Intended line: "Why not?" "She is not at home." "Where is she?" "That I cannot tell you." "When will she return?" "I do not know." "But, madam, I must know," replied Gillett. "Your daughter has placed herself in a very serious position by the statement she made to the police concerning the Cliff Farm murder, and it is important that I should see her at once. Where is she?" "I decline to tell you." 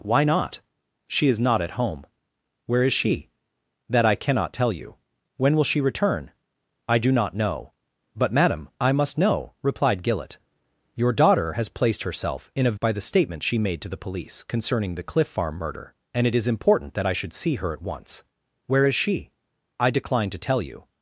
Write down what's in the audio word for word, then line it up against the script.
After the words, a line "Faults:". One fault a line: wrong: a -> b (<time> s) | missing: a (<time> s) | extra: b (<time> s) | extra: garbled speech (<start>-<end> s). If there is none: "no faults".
"Why not?" "She is not at home." "Where is she?" "That I cannot tell you." "When will she return?" "I do not know." "But, madam, I must know," replied Gillett. "Your daughter has placed herself in a by the statement she made to the police concerning the Cliff Farm murder, and it is important that I should see her at once. Where is she?" "I decline to tell you."
Faults:
missing: very serious position (12.8 s)